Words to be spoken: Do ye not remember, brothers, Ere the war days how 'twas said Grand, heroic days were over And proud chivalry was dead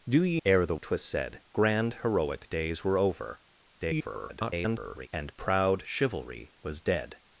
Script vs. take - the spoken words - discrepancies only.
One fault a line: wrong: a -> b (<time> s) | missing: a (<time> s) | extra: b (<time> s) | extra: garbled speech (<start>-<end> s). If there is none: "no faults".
missing: not remember brothers (0.4 s)
missing: war days how (0.8 s)
extra: garbled speech (3.8-5.1 s)